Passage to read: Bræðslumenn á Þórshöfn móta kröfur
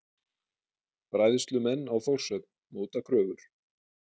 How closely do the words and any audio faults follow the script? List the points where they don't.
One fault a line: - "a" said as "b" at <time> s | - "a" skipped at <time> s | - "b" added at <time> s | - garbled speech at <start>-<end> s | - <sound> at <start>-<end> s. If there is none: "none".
none